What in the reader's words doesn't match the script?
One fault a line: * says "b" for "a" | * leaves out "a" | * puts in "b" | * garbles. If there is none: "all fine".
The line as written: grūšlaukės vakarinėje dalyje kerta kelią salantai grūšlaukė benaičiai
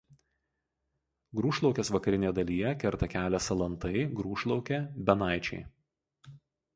all fine